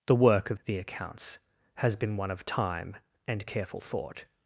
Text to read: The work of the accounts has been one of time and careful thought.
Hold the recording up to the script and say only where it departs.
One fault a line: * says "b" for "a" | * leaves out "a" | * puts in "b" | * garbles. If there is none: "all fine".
all fine